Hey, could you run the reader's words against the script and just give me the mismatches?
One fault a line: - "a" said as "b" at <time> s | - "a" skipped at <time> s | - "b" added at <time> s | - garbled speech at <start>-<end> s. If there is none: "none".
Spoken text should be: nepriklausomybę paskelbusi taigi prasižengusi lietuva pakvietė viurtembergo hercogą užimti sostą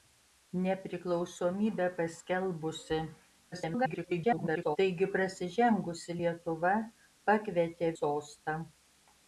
- garbled speech at 3.5-4.8 s
- "viurtembergo hercogą užimti" skipped at 7.9 s